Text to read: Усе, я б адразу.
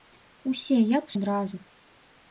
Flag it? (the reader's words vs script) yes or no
no